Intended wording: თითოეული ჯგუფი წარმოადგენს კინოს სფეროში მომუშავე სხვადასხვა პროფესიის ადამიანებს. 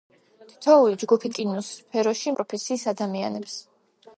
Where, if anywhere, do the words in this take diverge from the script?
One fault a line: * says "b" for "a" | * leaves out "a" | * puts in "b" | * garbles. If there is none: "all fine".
* leaves out "წარმოადგენს"
* leaves out "მომუშავე სხვადასხვა"